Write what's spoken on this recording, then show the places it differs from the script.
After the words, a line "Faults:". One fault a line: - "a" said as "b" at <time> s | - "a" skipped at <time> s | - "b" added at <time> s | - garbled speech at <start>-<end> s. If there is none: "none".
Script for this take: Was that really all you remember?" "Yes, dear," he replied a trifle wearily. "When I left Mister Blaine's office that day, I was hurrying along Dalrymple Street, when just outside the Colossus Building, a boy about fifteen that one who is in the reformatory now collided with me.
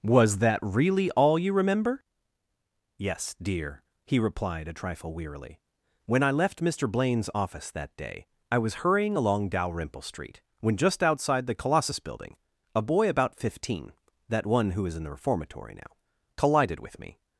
Was that really all you remember?" "Yes, dear," he replied a trifle wearily. "When I left Mister Blaine's office that day, I was hurrying along Dalrymple Street, when just outside the Colossus Building, a boy about fifteen that one who is in the reformatory now collided with me.
Faults:
none